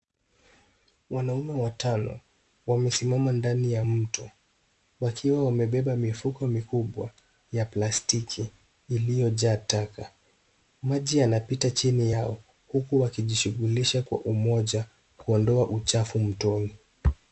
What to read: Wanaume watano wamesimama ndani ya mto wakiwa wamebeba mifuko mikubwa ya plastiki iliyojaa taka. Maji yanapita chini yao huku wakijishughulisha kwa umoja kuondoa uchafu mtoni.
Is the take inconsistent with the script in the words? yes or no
no